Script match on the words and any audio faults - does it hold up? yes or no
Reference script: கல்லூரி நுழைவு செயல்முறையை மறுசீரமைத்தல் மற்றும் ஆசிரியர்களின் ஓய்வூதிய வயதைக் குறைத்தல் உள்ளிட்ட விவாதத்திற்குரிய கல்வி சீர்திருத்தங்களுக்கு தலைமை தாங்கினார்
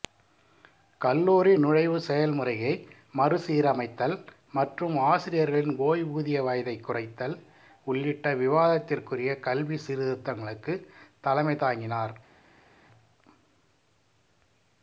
yes